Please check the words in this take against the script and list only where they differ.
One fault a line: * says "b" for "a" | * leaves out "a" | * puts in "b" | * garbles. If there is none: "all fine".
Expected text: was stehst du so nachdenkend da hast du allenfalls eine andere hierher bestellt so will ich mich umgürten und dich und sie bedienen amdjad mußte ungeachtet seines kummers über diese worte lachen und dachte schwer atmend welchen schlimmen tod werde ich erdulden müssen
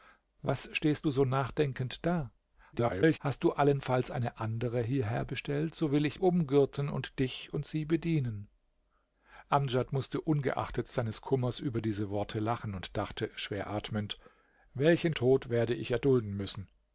* garbles
* leaves out "mich"
* leaves out "schlimmen"